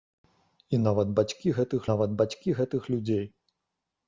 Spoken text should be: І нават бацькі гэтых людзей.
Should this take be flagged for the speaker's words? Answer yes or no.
yes